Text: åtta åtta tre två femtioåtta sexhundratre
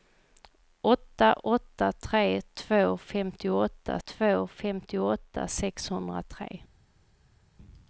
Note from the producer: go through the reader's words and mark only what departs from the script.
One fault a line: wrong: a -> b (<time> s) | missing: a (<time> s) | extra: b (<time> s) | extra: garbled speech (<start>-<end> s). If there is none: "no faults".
extra: två femtioåtta (4.0 s)